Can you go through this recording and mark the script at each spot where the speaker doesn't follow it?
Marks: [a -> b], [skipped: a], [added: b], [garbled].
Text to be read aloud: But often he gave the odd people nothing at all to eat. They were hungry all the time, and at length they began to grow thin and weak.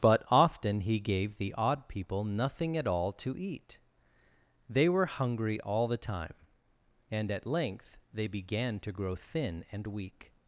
But often he gave the odd people nothing at all to eat. They were hungry all the time, and at length they began to grow thin and weak.